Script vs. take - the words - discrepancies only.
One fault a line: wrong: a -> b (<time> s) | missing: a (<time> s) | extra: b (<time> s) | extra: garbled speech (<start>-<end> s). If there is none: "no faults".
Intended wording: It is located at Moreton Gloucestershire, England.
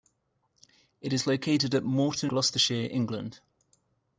no faults